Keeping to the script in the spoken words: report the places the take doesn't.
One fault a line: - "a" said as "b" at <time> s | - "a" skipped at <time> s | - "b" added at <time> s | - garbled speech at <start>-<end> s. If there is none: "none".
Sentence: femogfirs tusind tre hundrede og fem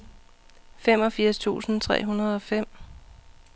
none